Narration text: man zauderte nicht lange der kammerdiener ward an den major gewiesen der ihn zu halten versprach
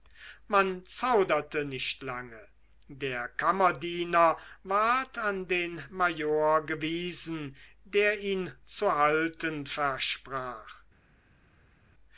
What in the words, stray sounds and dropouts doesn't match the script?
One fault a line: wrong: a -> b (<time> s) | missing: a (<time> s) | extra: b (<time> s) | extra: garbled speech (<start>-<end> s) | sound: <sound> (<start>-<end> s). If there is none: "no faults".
no faults